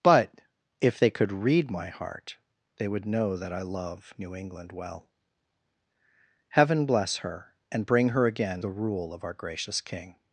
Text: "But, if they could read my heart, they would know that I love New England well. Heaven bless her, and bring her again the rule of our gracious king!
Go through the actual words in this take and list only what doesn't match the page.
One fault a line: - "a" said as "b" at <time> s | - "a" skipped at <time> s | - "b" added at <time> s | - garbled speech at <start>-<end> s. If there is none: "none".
none